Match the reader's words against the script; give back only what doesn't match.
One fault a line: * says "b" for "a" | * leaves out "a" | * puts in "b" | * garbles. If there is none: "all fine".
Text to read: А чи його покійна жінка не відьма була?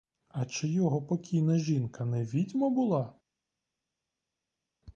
all fine